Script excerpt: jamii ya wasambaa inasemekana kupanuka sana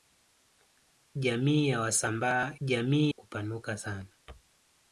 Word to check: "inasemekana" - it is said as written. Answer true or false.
false